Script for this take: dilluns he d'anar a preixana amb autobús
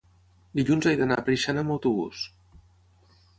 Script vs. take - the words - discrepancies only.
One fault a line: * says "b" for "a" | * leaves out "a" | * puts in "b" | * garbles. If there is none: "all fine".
all fine